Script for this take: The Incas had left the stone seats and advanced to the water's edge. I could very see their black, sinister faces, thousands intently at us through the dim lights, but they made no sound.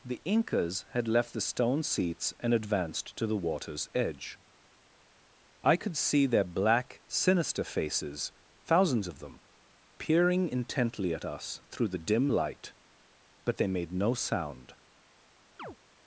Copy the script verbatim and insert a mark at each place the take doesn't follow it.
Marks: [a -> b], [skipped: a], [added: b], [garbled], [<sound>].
The Incas had left the stone seats and advanced to the water's edge. I could [skipped: very] see their black, sinister faces, thousands [added: of them peering] intently at us through the dim [lights, -> light] but they made no sound. [chirp]